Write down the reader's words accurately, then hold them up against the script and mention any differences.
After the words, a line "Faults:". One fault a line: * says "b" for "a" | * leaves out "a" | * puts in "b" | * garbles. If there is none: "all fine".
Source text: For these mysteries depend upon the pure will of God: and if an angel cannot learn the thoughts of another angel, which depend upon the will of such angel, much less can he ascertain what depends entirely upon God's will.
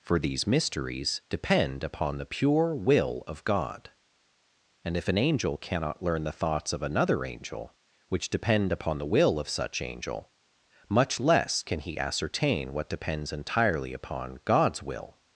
For these mysteries depend upon the pure will of God: and if an angel cannot learn the thoughts of another angel, which depend upon the will of such angel, much less can he ascertain what depends entirely upon God's will.
Faults:
all fine